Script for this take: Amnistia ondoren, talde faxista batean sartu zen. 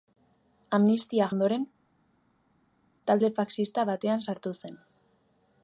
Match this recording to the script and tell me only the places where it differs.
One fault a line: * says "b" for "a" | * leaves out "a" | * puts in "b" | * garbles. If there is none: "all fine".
all fine